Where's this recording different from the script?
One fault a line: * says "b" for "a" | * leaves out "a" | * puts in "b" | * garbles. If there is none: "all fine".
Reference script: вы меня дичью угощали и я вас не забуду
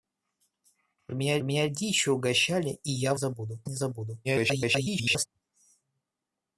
* puts in "меня"
* says "забуду" for "вас"
* garbles